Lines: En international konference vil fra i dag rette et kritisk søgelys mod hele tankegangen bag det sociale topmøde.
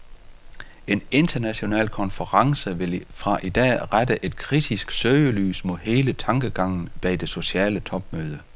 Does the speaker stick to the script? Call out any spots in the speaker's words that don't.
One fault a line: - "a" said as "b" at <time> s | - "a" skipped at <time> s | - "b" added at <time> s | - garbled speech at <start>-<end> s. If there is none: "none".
none